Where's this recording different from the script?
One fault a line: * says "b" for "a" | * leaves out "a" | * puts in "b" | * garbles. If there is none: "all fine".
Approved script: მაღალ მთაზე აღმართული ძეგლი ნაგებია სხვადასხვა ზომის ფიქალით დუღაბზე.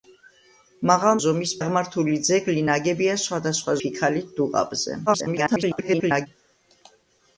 * says "ზომის" for "მთაზე"
* leaves out "ზომის"
* garbles